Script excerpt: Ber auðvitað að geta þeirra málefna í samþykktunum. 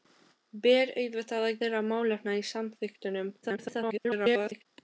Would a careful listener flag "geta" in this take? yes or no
yes